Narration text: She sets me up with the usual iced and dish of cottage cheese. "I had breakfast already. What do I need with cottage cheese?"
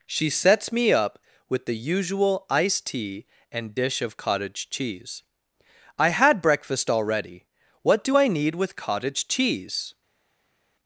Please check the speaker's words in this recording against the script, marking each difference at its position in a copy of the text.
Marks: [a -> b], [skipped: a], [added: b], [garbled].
She sets me up with the usual iced [added: tea] and dish of cottage cheese. "I had breakfast already. What do I need with cottage cheese?"